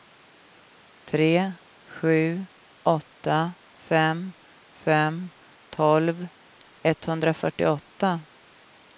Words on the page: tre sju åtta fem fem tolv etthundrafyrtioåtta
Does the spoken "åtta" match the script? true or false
true